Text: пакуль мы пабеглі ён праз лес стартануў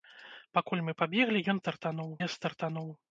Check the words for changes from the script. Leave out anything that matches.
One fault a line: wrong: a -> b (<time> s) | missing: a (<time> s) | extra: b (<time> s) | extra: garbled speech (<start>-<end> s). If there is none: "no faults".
wrong: праз -> стартануў (1.6 s)